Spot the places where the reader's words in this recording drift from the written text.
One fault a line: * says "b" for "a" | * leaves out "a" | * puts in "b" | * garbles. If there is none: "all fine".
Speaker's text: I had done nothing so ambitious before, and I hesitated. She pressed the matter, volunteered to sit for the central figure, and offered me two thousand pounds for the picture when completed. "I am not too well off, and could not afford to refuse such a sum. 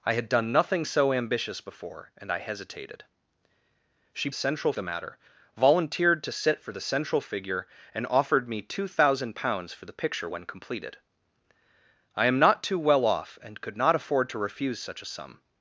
* says "central" for "pressed"